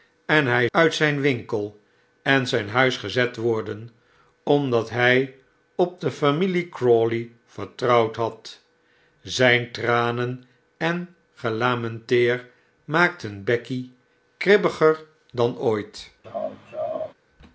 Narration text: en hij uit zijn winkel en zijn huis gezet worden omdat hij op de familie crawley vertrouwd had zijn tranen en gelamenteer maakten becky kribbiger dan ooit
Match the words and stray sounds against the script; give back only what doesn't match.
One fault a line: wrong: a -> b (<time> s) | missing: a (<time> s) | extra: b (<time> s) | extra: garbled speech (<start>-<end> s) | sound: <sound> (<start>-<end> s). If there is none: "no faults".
sound: laugh (16.2-17.1 s)